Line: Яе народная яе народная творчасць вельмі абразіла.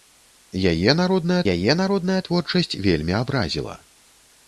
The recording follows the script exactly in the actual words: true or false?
true